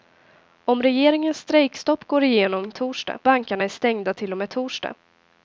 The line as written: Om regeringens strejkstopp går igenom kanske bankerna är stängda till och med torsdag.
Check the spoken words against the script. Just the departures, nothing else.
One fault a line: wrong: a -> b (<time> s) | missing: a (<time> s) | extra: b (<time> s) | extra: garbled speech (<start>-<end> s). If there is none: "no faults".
wrong: kanske -> torsdag (2.7 s)